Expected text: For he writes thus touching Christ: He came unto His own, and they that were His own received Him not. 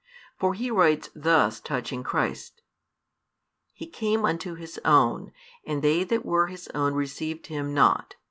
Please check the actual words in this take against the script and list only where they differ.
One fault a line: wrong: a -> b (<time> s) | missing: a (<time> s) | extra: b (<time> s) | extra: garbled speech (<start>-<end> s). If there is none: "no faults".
no faults